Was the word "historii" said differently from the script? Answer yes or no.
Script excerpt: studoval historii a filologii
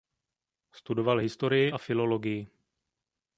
no